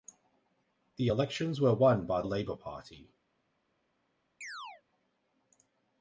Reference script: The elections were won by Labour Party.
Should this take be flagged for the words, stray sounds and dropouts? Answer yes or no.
yes